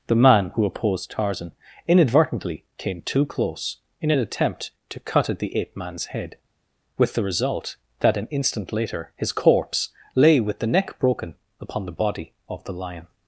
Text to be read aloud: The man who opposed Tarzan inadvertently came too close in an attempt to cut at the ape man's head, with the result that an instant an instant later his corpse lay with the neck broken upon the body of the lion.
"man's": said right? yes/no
yes